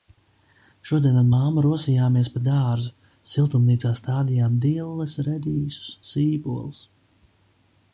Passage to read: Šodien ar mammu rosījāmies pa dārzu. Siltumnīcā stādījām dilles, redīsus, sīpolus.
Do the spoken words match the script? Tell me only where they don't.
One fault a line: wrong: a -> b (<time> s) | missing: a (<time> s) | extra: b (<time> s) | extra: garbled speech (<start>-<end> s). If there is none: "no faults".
no faults